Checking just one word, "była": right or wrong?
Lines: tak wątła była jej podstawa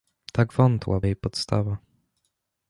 wrong